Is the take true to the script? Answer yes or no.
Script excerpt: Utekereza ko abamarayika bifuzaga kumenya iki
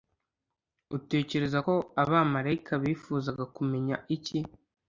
yes